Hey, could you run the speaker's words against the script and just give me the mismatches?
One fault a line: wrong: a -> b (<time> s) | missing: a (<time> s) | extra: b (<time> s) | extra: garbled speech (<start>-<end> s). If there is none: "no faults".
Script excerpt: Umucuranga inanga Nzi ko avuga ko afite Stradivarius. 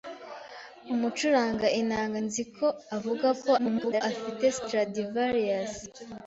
extra: garbled speech (3.6-4.0 s)